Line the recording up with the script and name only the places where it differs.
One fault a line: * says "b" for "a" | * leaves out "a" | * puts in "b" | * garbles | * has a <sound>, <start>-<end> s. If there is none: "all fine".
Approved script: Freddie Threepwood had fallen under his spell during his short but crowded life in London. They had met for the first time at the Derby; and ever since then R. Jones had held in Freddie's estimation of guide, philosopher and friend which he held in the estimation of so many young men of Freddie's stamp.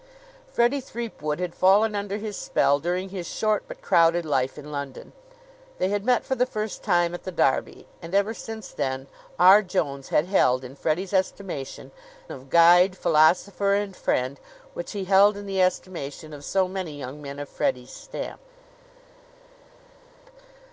all fine